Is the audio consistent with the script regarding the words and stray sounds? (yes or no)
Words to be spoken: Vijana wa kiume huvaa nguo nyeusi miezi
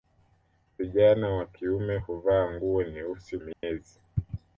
no